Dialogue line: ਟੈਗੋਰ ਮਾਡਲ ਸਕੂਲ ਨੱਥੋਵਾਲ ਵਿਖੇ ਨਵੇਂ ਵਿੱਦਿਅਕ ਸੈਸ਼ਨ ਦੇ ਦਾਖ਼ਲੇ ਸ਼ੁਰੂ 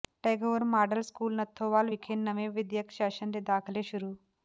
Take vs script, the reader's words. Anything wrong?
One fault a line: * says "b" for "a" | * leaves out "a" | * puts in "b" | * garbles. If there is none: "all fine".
all fine